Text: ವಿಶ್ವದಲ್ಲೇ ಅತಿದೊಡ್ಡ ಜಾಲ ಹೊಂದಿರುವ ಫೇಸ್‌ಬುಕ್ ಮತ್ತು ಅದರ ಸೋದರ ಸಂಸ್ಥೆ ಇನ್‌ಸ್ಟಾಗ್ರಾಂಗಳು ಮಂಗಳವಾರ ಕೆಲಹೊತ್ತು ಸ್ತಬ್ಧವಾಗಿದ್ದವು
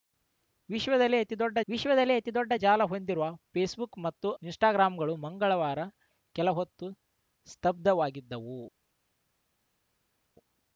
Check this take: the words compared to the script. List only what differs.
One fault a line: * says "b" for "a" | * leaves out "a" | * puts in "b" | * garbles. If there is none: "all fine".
* puts in "ವಿಶ್ವದಲ್ಲೇ ಅತಿದೊಡ್ಡ"
* leaves out "ಅದರ ಸೋದರ ಸಂಸ್ಥೆ"